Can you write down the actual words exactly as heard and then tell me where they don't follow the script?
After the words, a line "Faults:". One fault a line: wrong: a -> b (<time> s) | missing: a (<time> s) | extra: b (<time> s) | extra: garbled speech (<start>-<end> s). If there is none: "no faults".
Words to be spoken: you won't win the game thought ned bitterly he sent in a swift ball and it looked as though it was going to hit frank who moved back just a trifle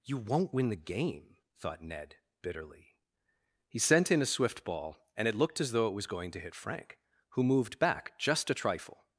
you won't win the game thought ned bitterly he sent in a swift ball and it looked as though it was going to hit frank who moved back just a trifle
Faults:
no faults